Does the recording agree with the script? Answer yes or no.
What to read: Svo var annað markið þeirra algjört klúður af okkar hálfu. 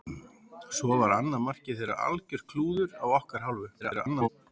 no